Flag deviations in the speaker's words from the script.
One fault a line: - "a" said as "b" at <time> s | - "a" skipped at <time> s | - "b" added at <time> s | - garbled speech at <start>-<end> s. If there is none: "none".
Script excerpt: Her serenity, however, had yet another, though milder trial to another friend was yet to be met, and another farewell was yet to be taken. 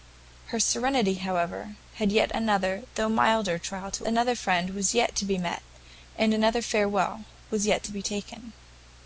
none